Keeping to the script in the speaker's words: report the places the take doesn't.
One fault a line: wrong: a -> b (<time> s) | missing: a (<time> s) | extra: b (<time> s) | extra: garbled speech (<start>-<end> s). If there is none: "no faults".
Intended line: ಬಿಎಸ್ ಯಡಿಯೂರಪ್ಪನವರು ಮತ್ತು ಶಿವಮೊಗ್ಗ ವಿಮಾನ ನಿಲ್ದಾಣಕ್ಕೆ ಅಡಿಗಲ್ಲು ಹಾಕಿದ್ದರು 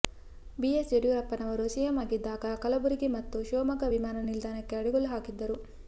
extra: ಸಿಎಂ ಆಗಿದ್ದಾಗ ಕಲಬುರಗಿ (1.7 s)